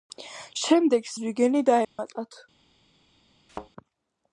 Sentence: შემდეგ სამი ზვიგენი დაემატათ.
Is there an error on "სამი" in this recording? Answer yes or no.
yes